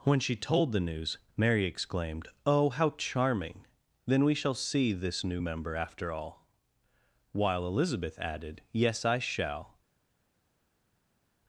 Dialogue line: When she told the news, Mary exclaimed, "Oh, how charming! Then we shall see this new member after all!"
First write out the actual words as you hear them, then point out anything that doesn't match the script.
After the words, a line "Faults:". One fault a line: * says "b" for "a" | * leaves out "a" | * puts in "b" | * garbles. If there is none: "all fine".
When she told the news, Mary exclaimed, "Oh, how charming! Then we shall see this new member after all!" while Elizabeth added, "Yes! I shall
Faults:
* puts in "while Elizabeth added Yes I shall"